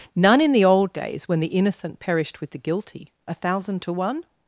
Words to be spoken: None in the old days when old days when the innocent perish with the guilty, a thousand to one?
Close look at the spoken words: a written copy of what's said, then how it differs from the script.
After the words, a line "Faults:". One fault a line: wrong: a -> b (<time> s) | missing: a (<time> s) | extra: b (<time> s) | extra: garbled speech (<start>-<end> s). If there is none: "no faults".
None in the old days when the innocent perished with the guilty, a thousand to one?
Faults:
missing: old days when (1.4 s)
wrong: perish -> perished (2.0 s)